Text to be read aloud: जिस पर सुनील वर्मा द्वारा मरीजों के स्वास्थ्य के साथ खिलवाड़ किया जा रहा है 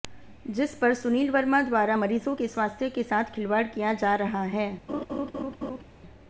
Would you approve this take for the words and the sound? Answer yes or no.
no